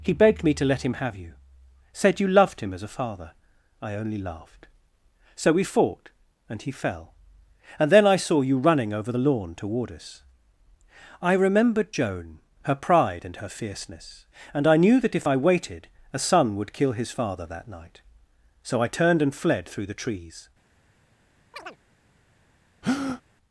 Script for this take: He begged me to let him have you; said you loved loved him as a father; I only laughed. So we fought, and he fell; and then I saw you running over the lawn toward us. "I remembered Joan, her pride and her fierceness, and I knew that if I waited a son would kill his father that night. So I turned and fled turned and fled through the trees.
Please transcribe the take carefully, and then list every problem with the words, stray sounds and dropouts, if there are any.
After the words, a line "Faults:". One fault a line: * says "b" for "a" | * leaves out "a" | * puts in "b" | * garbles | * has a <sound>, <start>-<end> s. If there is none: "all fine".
He begged me to let him have you; said you loved him as a father; I only laughed. So we fought, and he fell; and then I saw you running over the lawn toward us. "I remembered Joan, her pride and her fierceness, and I knew that if I waited a son would kill his father that night. So I turned and fled through the trees.
Faults:
* leaves out "loved"
* leaves out "turned and fled"
* has a chirp, 21.5-21.8 s
* has a breath, 22.8-23.2 s